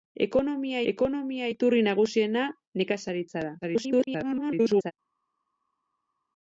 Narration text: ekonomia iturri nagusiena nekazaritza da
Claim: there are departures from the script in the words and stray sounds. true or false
true